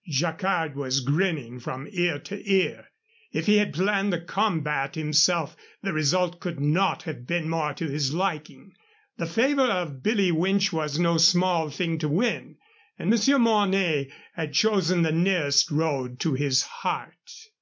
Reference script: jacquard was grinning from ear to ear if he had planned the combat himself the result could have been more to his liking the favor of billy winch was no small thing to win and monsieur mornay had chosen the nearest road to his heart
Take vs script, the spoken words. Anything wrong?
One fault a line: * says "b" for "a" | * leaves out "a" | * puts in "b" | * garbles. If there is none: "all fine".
* puts in "not"